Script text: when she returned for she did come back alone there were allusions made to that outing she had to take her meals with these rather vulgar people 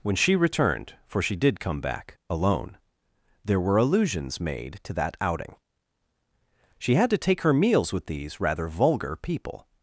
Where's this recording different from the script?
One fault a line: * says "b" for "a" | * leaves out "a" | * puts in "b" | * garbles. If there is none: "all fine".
all fine